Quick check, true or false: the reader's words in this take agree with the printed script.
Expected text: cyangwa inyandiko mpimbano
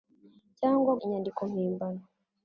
true